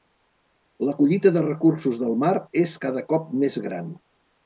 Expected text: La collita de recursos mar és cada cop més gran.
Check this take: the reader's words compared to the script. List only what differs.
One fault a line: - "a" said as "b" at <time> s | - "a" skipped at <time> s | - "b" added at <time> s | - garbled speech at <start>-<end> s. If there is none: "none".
- "del" added at 2.0 s